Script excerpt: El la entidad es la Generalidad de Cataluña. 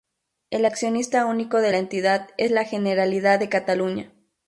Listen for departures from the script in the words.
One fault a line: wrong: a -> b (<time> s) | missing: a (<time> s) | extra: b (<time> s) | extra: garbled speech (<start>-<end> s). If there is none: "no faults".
extra: accionista único de (0.6 s)